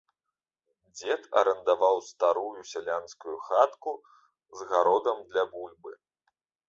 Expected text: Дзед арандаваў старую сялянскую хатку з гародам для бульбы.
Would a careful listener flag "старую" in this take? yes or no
no